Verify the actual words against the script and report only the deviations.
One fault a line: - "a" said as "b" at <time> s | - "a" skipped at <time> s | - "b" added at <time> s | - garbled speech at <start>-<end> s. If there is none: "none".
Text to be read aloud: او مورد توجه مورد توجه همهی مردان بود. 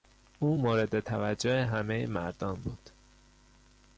- "مورد توجه" skipped at 1.6 s